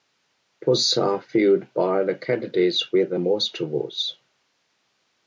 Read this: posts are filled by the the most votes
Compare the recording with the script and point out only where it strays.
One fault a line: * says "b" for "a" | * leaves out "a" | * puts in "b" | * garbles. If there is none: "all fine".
* puts in "candidates with"